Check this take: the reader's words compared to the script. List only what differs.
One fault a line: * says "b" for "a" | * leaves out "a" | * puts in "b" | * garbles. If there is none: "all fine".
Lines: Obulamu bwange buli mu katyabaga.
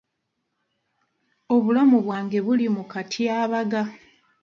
all fine